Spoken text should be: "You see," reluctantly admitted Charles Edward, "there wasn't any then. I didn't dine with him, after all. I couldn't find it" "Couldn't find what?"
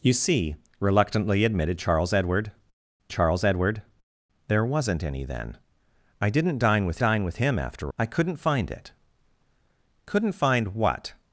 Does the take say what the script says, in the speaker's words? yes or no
no